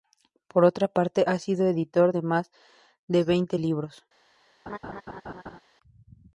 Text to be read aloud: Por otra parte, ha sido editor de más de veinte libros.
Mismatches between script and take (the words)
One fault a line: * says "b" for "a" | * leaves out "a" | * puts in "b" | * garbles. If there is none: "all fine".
all fine